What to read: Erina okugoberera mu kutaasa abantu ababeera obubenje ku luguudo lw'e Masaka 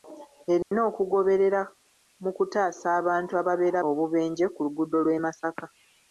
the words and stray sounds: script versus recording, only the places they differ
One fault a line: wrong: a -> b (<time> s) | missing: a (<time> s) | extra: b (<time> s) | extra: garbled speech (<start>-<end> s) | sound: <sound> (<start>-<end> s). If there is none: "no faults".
sound: dropout (0.6-0.7 s)